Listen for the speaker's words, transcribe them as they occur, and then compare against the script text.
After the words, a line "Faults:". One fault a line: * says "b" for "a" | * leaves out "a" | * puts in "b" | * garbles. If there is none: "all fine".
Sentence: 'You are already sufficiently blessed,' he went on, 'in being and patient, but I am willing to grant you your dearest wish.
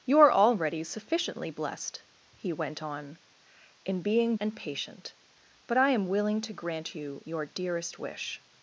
'You are already sufficiently blessed,' he went on, 'in being and patient, but I am willing to grant you your dearest wish.
Faults:
all fine